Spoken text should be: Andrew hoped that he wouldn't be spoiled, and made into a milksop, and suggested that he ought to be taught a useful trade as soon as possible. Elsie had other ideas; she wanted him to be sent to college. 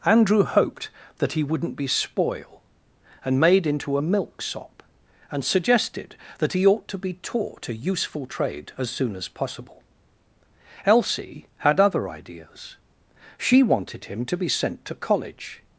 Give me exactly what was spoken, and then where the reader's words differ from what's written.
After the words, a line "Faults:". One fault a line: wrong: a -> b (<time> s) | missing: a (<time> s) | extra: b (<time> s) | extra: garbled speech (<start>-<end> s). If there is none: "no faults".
Andrew hoped that he wouldn't be spoil, and made into a milksop, and suggested that he ought to be taught a useful trade as soon as possible. Elsie had other ideas; she wanted him to be sent to college.
Faults:
wrong: spoiled -> spoil (1.9 s)